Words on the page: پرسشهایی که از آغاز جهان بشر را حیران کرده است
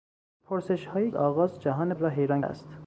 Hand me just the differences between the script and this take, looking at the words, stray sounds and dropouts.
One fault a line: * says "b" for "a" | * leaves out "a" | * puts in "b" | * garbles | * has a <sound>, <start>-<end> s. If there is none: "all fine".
* leaves out "که از"
* leaves out "بشر"
* leaves out "کرده"